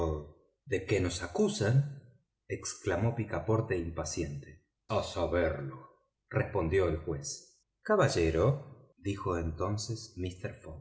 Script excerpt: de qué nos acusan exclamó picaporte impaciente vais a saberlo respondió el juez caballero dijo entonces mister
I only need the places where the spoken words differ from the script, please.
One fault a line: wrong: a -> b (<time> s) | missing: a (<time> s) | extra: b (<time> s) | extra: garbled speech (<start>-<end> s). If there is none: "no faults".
missing: vais (4.7 s)